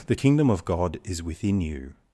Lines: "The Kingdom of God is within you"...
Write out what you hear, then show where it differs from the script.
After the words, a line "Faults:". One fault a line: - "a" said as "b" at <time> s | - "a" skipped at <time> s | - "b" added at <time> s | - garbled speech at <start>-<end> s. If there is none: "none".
"The Kingdom of God is within you"...
Faults:
none